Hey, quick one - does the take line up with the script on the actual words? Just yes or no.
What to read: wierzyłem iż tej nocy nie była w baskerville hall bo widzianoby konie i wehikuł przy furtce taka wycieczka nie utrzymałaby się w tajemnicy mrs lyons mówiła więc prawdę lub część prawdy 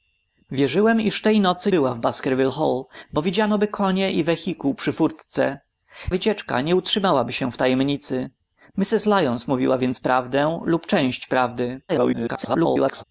no